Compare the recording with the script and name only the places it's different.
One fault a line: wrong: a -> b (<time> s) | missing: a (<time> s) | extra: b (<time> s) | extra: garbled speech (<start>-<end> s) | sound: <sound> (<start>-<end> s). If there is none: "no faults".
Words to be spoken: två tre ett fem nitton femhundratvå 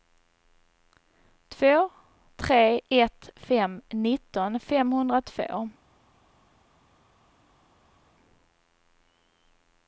no faults